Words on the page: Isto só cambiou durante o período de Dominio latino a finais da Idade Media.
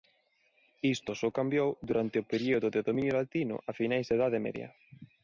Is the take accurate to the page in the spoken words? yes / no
yes